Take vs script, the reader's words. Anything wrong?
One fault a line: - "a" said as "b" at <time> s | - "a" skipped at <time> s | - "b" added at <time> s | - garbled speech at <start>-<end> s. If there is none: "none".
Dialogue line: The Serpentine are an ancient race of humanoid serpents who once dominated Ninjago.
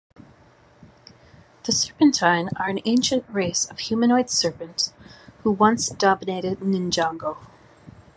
none